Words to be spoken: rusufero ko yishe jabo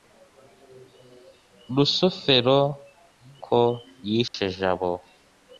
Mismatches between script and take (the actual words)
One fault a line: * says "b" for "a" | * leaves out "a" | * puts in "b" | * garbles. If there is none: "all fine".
all fine